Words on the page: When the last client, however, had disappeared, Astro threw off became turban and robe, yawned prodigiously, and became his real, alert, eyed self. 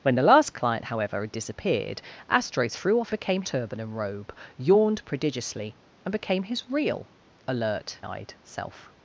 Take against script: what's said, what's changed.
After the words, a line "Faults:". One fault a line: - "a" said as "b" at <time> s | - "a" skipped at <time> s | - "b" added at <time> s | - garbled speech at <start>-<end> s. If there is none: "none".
When the last client, however, had disappeared, Astro threw off became turban and robe, yawned prodigiously, and became his real, alert, eyed self.
Faults:
none